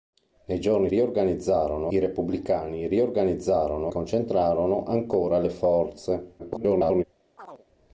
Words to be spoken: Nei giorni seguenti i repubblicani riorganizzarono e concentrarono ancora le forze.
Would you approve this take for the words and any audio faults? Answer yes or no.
no